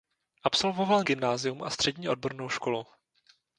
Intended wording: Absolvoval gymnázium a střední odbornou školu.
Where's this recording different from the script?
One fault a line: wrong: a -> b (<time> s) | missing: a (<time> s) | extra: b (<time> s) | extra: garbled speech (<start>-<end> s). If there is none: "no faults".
no faults